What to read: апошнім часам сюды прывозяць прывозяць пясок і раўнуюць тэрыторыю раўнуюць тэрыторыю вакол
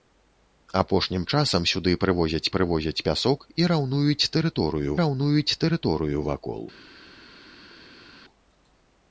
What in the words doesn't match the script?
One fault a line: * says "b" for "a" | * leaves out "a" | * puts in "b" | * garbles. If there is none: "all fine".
all fine